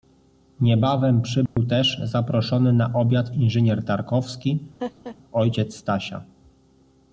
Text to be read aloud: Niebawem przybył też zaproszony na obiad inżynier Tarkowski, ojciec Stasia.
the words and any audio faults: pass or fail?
fail